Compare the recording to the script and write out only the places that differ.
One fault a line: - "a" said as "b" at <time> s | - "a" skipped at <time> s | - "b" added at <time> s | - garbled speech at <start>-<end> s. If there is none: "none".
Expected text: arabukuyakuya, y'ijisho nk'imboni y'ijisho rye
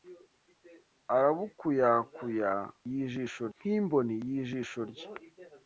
none